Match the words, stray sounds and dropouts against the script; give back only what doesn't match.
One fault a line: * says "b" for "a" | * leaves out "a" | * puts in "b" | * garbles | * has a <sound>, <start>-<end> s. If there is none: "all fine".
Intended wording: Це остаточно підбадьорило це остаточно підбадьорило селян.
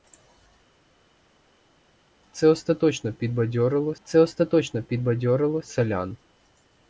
all fine